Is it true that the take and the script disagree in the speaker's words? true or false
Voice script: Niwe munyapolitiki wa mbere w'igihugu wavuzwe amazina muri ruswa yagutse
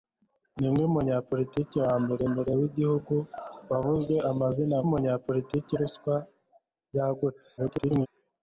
true